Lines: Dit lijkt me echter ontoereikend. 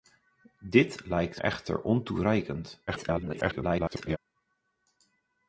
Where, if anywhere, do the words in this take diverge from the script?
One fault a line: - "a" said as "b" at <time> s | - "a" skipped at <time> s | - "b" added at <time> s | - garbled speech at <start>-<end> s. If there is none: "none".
- "me" skipped at 1.4 s
- garbled speech at 2.9-4.2 s